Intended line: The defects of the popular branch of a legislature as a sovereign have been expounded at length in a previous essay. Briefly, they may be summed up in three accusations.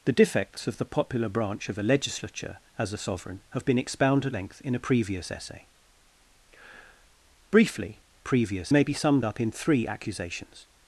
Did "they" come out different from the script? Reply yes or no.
yes